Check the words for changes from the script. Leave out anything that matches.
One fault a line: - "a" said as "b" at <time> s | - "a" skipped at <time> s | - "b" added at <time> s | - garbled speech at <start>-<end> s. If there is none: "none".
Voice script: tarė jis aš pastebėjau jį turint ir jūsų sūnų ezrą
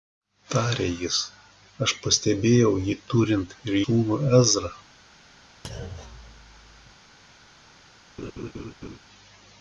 - "jūsų" skipped at 3.8 s